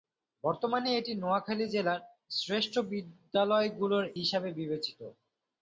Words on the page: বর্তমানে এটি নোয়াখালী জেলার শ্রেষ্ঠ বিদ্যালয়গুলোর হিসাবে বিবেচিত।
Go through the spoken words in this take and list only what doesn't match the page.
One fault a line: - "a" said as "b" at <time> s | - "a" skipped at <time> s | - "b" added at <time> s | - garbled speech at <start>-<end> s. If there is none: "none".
none